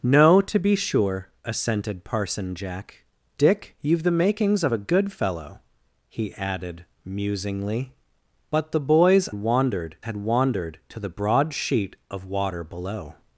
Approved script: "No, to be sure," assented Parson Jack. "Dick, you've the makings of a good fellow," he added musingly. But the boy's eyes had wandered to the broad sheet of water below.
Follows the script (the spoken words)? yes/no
no